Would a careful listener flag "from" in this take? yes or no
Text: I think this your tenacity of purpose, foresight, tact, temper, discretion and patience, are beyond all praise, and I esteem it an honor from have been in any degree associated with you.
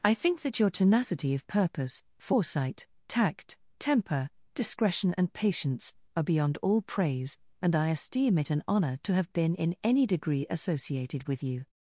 yes